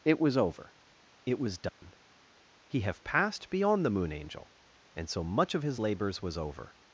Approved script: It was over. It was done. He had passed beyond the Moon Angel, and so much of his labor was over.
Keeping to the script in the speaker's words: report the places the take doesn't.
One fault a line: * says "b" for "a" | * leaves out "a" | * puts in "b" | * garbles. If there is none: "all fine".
* says "have" for "had"
* says "labors" for "labor"